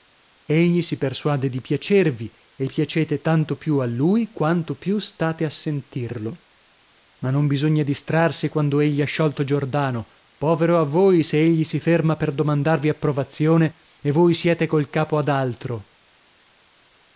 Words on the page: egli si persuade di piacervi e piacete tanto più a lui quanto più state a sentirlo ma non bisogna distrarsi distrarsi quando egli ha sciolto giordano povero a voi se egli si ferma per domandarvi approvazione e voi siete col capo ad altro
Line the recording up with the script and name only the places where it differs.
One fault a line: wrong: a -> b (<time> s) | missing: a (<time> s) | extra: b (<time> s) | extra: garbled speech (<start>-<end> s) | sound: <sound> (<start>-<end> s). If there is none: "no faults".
missing: distrarsi (8.5 s)